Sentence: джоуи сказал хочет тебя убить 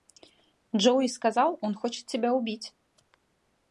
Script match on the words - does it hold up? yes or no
no